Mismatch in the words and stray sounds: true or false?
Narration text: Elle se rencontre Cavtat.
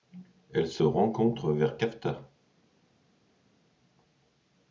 true